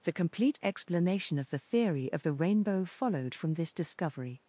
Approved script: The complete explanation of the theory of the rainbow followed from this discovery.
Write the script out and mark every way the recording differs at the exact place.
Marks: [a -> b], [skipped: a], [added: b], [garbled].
The complete explanation of the theory of the rainbow followed from this discovery.